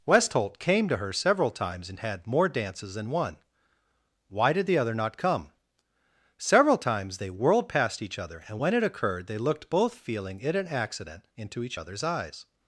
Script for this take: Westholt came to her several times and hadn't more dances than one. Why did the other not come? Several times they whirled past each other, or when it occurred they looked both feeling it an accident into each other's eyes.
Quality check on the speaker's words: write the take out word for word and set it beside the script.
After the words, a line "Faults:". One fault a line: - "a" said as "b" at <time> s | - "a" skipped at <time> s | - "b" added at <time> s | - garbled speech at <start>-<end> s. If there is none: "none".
Westholt came to her several times and had more dances than one. Why did the other not come? Several times they whirled past each other, and when it occurred they looked both feeling it an accident into each other's eyes.
Faults:
- "hadn't" said as "had" at 2.0 s
- "or" said as "and" at 8.5 s